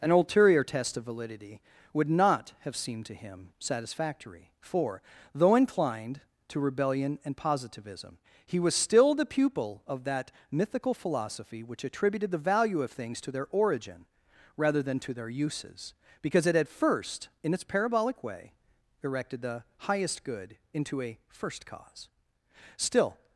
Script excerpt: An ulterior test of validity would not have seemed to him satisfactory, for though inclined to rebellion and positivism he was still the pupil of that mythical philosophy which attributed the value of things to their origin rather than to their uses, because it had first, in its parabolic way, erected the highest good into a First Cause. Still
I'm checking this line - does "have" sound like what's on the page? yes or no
yes